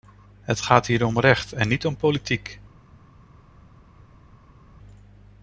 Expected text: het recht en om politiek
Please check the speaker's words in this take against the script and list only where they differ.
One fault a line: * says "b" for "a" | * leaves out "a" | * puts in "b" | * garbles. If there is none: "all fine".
* puts in "gaat hier om"
* puts in "niet"